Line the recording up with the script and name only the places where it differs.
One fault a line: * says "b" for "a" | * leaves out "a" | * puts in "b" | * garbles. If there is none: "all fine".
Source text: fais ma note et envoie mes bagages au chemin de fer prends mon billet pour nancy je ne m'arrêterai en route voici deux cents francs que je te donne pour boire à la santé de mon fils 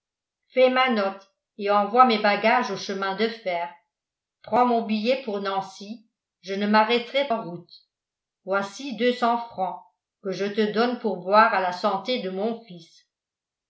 all fine